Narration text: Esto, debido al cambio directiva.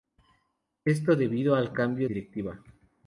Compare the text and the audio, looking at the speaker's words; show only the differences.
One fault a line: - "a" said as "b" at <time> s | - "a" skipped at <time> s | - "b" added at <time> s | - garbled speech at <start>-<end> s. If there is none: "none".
none